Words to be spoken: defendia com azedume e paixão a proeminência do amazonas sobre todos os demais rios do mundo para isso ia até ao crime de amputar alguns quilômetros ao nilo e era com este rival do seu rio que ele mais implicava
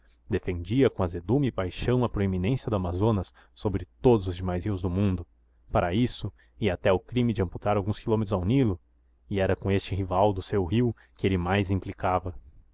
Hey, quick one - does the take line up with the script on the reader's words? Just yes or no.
yes